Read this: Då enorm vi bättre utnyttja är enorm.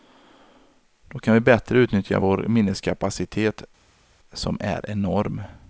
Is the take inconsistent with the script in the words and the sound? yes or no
yes